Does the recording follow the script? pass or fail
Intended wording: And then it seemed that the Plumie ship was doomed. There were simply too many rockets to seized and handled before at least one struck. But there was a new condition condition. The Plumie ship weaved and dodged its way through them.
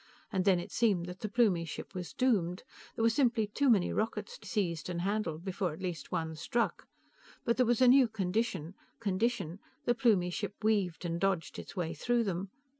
pass